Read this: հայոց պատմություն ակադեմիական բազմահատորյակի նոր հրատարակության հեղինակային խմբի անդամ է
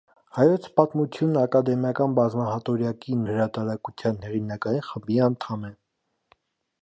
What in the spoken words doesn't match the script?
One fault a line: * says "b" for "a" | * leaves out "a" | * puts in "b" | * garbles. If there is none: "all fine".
* leaves out "նոր"